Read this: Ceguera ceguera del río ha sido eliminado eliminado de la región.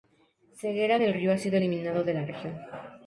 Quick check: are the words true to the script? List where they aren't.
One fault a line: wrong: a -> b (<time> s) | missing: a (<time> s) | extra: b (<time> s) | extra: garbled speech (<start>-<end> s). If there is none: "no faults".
missing: ceguera (1.0 s)
missing: eliminado (2.0 s)